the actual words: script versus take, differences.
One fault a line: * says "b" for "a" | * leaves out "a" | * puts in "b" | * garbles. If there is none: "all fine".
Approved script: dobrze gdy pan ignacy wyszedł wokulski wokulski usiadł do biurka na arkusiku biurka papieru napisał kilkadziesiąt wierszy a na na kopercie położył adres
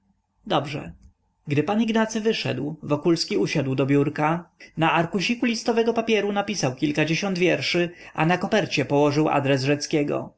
* leaves out "wokulski"
* says "listowego" for "biurka"
* leaves out "na"